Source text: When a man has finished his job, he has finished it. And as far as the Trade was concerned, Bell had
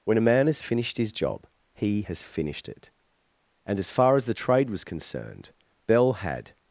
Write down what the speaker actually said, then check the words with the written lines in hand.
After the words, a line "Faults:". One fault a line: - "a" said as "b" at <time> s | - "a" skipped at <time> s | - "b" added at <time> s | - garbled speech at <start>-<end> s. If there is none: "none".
When a man has finished his job, he has finished it. And as far as the Trade was concerned, Bell had
Faults:
none